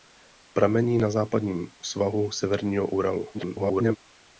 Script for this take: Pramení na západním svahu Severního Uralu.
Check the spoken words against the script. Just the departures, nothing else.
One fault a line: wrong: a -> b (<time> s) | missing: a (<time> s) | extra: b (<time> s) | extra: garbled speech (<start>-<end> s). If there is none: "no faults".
extra: garbled speech (3.3-4.0 s)